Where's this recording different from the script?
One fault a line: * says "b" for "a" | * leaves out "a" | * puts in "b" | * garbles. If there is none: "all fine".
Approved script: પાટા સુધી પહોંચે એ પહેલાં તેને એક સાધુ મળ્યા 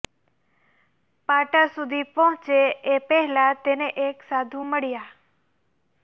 all fine